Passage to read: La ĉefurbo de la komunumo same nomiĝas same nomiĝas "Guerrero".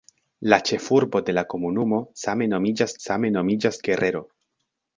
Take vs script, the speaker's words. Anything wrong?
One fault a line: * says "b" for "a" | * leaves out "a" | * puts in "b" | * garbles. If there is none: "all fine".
all fine